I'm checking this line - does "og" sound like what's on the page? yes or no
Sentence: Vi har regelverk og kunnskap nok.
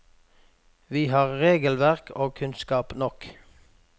yes